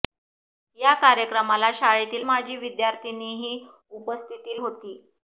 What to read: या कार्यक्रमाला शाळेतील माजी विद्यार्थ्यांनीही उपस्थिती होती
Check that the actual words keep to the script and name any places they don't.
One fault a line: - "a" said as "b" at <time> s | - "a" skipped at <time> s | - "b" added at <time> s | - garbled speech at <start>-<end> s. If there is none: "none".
none